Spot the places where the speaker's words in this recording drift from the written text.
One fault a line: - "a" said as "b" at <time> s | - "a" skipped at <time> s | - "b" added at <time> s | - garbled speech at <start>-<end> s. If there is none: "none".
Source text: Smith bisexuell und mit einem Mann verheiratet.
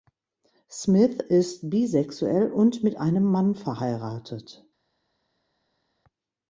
- "ist" added at 1.3 s